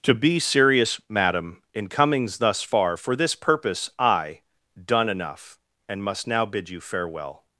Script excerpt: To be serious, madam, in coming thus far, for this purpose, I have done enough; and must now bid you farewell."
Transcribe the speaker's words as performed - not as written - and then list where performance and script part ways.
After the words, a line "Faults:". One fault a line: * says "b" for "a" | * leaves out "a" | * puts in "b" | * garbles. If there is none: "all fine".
To be serious, madam, in comings thus far, for this purpose, I done enough; and must now bid you farewell."
Faults:
* says "comings" for "coming"
* leaves out "have"